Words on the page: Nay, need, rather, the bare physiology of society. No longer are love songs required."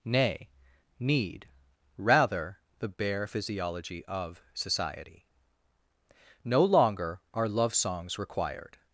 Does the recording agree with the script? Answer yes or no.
yes